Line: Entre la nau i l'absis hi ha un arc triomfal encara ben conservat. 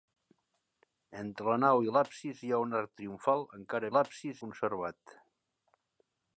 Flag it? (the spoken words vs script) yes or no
yes